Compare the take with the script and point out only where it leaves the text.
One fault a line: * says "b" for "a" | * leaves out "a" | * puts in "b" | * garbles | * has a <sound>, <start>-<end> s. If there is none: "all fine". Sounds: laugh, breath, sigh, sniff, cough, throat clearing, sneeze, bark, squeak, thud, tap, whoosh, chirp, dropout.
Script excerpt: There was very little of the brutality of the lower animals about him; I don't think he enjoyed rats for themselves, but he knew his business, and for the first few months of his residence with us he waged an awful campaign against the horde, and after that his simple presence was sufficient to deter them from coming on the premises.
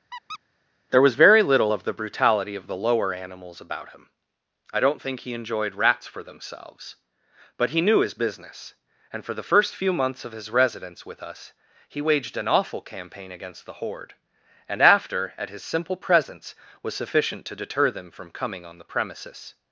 * has a squeak, 0.1-0.4 s
* says "at" for "that"